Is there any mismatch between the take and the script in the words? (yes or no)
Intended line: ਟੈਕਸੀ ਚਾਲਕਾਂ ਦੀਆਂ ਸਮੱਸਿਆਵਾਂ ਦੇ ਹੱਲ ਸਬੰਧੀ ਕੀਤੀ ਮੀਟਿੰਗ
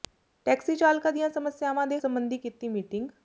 yes